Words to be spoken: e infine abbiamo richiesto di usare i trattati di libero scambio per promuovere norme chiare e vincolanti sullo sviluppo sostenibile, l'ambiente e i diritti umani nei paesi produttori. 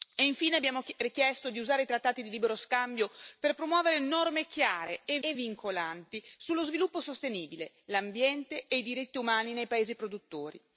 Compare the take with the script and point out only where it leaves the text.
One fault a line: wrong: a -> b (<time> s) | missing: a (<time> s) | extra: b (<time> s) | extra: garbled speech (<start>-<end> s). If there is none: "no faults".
extra: e (5.2 s)